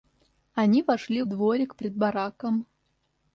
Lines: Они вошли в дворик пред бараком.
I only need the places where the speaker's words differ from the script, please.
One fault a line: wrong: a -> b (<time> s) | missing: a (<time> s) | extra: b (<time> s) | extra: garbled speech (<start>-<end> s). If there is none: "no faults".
no faults